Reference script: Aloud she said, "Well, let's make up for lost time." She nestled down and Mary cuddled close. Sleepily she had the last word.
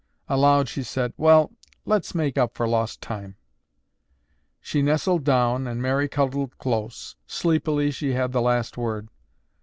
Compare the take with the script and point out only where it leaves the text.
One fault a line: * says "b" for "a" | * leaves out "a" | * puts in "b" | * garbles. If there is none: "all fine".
all fine